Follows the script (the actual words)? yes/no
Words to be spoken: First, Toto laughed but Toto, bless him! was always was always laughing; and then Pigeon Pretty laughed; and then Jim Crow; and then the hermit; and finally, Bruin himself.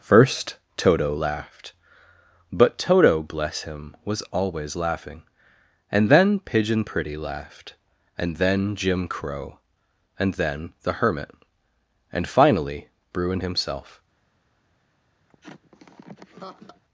no